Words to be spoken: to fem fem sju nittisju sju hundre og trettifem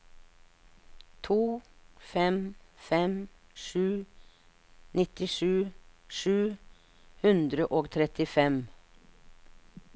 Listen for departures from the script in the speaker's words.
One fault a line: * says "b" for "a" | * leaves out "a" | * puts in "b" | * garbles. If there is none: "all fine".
all fine